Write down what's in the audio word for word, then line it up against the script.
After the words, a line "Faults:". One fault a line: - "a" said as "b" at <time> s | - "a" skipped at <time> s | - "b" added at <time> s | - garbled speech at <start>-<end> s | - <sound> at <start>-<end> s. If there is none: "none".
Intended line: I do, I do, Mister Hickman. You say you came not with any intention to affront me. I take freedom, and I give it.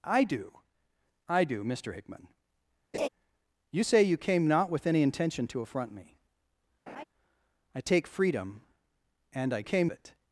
I do, I do, Mister Hickman. You say you came not with any intention to affront me. I take freedom, and I came it.
Faults:
- laugh at 2.9-3.1 s
- laugh at 6.9-7.0 s
- "give" said as "came" at 9.6 s